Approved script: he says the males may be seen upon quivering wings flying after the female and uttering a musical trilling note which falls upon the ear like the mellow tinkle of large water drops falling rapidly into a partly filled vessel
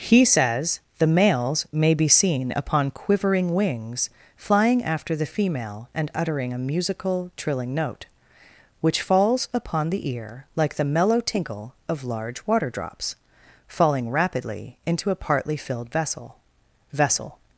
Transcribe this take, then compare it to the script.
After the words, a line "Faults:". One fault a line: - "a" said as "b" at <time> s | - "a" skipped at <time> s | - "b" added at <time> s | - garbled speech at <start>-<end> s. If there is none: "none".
he says the males may be seen upon quivering wings flying after the female and uttering a musical trilling note which falls upon the ear like the mellow tinkle of large water drops falling rapidly into a partly filled vessel vessel
Faults:
- "vessel" added at 16.9 s